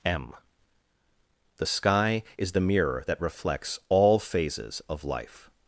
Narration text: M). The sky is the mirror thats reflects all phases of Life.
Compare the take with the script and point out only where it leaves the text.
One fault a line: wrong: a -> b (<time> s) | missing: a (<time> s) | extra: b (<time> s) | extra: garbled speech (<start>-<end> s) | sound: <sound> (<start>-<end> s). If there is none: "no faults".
wrong: thats -> that (3.1 s)